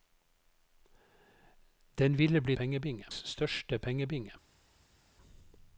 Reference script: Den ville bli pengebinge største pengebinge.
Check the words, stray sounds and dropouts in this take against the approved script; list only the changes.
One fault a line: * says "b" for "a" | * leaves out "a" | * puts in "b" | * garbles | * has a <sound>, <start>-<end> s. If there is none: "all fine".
all fine